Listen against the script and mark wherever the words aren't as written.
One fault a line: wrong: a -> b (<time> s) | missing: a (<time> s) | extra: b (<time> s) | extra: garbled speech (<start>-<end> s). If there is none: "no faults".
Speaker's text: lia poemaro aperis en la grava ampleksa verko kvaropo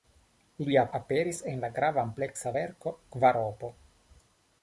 missing: poemaro (0.8 s)